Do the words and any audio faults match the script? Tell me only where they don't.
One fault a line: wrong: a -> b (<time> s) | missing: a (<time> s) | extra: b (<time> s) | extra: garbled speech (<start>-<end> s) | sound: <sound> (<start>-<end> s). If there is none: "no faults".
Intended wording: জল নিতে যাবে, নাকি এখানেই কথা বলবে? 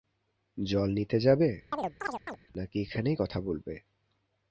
sound: chirp (1.7-2.4 s)